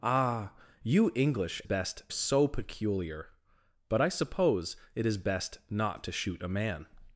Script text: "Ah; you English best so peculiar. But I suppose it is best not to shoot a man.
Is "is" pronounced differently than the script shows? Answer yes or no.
no